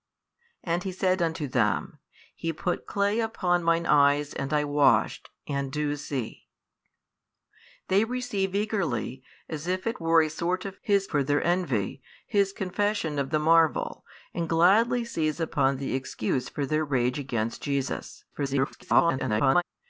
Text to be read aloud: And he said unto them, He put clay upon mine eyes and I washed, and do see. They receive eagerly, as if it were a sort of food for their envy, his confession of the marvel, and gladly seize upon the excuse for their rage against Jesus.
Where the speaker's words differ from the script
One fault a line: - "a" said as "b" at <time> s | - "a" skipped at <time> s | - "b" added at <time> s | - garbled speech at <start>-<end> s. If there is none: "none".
- "food" said as "his" at 10.8 s
- garbled speech at 18.3-19.6 s